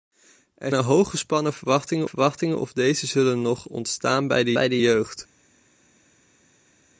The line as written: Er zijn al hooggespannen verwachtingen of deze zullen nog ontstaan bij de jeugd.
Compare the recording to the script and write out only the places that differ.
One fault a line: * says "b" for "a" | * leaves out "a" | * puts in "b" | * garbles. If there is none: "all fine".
* leaves out "zijn"
* puts in "verwachtingen"
* puts in "bij de"